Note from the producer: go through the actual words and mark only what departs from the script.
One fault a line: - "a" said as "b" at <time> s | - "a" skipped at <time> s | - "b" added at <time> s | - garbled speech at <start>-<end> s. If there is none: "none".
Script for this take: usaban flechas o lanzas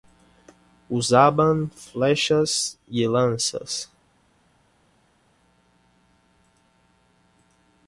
- "o" said as "y" at 2.9 s